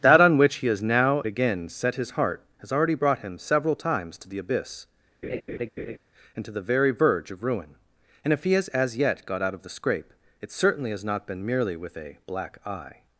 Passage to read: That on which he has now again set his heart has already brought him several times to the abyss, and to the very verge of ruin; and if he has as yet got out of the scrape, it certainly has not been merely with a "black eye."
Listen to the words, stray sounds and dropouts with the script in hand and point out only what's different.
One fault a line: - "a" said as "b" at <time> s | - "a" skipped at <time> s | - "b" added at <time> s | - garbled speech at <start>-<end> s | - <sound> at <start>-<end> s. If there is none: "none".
- laugh at 5.2-6.0 s